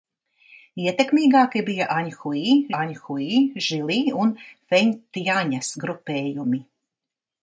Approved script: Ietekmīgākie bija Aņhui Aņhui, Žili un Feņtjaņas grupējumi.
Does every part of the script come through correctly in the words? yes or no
yes